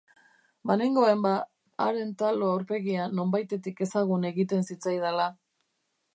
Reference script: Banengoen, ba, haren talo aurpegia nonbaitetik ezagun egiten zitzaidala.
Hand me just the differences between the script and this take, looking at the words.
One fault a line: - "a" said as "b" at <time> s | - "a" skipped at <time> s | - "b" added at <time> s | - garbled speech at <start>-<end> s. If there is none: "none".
none